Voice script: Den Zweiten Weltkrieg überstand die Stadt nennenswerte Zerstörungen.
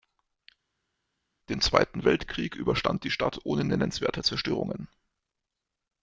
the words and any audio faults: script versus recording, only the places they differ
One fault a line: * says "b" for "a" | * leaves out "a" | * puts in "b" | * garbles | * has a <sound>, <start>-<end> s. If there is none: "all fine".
* puts in "ohne"